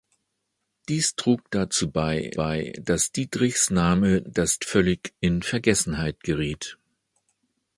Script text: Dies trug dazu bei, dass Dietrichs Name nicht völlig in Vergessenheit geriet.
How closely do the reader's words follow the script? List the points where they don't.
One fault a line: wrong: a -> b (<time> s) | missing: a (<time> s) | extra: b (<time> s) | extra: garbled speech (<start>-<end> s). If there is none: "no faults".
extra: bei (2.3 s)
wrong: nicht -> dass (4.3 s)